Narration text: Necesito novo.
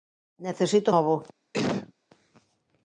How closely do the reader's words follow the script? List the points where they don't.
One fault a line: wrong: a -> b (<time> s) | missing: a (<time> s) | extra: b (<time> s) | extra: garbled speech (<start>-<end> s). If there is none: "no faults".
no faults